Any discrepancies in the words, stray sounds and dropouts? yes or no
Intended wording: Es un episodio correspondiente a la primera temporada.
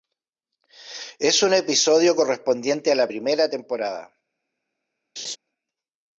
yes